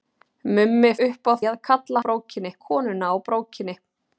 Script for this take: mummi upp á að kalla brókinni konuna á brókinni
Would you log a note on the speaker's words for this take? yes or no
no